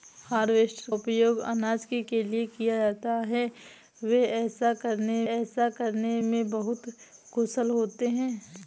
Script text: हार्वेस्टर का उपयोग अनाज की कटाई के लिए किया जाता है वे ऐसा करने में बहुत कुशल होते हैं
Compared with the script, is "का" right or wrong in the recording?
wrong